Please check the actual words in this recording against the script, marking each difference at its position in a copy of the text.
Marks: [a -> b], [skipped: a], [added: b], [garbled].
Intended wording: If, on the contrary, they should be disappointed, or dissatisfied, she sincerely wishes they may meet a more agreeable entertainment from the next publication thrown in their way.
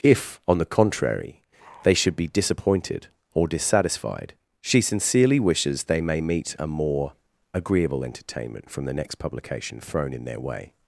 If, on the contrary, they should be disappointed, or dissatisfied, she sincerely wishes they may meet a more agreeable entertainment from the next publication thrown in their way.